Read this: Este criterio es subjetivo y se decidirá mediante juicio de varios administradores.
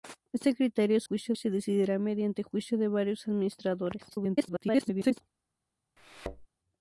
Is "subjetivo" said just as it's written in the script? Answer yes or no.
no